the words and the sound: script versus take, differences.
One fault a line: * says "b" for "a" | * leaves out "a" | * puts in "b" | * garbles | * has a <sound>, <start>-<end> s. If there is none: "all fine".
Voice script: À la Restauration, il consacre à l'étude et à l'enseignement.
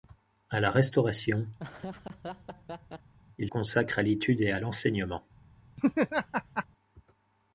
* has a laugh, 1.6-3.1 s
* has a laugh, 5.8-6.7 s